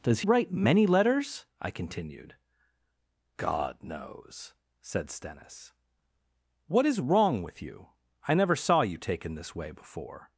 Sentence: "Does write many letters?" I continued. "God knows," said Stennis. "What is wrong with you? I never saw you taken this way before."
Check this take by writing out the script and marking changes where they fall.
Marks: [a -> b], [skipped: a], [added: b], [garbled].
"Does write many letters?" I continued. "God knows," said Stennis. "What is wrong with you? I never saw you taken this way before."